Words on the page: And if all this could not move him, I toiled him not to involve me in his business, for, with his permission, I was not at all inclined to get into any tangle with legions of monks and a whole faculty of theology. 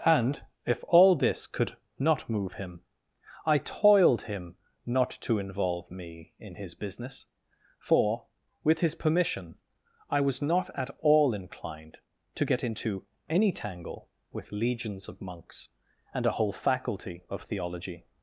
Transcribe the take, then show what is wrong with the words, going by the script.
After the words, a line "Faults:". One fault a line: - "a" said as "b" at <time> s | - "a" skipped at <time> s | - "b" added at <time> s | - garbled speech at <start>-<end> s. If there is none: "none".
And if all this could not move him, I toiled him not to involve me in his business, for, with his permission, I was not at all inclined to get into any tangle with legions of monks and a whole faculty of theology.
Faults:
none